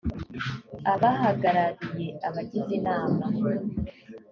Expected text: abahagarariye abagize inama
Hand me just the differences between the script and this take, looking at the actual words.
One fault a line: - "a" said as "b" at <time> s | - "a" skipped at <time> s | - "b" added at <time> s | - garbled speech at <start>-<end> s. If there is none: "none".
none